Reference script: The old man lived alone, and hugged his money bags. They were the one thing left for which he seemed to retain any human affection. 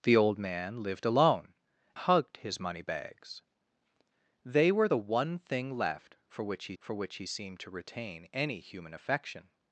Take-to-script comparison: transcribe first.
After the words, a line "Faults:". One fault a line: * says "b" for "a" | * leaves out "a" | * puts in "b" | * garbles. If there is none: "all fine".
The old man lived alone, hugged his money bags. They were the one thing left for which he for which he seemed to retain any human affection.
Faults:
* leaves out "and"
* puts in "for which he"